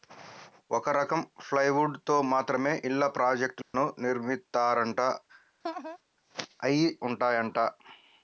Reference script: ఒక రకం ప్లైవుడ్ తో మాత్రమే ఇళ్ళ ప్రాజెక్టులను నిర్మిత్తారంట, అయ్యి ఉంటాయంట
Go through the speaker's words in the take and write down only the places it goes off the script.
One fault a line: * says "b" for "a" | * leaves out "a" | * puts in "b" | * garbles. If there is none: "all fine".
all fine